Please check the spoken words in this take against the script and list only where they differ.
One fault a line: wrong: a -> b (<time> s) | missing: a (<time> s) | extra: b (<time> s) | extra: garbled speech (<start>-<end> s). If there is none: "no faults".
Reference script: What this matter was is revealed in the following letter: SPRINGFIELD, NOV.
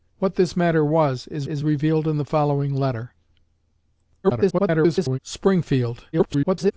extra: is (1.4 s)
extra: garbled speech (4.2-5.2 s)
extra: garbled speech (6.1-6.7 s)